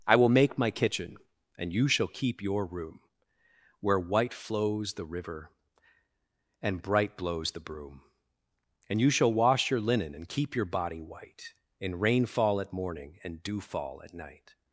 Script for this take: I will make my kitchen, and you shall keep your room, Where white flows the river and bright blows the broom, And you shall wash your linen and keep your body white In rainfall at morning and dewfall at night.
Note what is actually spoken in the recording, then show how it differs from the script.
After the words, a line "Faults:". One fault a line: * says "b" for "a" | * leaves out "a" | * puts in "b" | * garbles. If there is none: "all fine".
I will make my kitchen, and you shall keep your room, Where white flows the river and bright blows the broom, And you shall wash your linen and keep your body white In rainfall at morning and dewfall at night.
Faults:
all fine